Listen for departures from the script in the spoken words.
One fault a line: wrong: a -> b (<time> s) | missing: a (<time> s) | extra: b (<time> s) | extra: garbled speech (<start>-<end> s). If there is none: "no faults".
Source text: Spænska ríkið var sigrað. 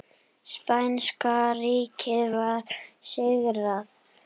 no faults